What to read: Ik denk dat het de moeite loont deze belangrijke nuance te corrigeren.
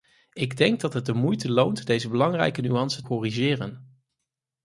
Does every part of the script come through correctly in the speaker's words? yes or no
no